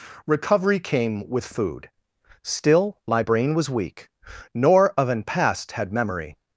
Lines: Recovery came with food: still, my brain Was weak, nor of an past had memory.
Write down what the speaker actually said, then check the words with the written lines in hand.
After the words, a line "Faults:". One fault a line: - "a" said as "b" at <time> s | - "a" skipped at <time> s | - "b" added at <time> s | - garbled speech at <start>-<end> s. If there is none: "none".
Recovery came with food: still, my brain Was weak, nor of an past had memory.
Faults:
none